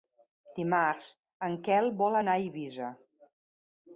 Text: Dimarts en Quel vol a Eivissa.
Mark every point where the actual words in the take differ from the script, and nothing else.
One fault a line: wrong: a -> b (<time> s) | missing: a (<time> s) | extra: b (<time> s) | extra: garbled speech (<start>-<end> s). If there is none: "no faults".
extra: anar (2.2 s)